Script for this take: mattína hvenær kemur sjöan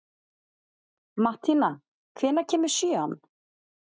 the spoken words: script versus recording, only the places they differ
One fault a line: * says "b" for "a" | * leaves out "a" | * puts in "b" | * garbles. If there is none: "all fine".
all fine